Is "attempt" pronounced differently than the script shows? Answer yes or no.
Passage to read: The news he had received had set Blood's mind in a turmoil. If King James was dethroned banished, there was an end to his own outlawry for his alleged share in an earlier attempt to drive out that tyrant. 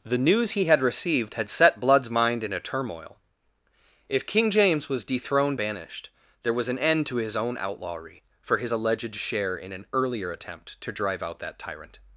no